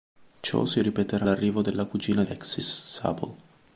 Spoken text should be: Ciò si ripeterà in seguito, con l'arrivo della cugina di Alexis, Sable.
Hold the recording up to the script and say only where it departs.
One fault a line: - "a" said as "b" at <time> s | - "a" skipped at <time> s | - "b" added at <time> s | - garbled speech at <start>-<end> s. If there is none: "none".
- "in seguito con" skipped at 1.3 s
- "di" skipped at 2.2 s